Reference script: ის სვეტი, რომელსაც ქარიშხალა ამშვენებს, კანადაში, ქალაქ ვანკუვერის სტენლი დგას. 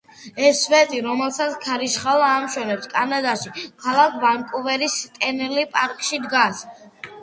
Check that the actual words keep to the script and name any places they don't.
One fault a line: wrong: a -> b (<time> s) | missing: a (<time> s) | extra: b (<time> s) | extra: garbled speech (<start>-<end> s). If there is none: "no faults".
wrong: ის -> ეს (0.4 s)
extra: პარკში (5.8 s)